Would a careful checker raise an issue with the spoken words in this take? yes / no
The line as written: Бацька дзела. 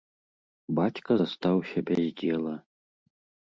yes